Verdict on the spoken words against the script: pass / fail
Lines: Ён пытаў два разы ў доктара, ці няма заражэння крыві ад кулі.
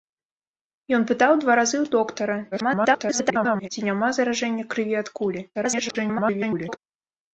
fail